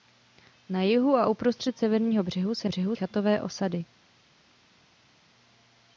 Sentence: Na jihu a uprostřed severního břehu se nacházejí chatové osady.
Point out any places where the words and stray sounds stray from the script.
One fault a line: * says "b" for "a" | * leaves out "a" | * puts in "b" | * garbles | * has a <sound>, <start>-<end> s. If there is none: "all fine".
* says "břehu" for "nacházejí"